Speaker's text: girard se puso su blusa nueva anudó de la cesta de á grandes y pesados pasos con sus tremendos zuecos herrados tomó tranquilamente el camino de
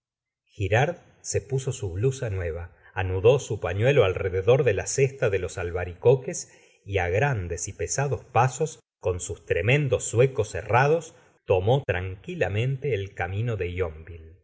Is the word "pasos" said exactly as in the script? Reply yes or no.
yes